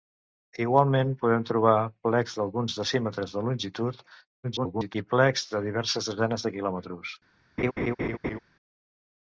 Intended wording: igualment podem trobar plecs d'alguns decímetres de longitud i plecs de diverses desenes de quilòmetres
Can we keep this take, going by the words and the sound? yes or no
no